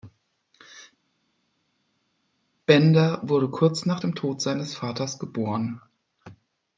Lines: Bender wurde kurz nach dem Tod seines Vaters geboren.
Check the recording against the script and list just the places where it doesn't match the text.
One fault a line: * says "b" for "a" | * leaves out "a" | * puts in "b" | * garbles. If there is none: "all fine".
all fine